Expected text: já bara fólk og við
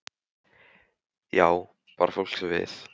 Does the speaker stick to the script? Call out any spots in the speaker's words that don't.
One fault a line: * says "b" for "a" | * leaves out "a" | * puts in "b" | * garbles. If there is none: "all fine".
all fine